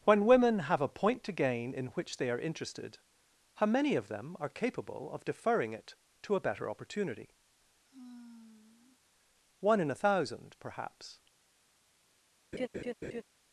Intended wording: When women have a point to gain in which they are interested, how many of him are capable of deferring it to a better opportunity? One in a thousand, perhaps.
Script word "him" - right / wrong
wrong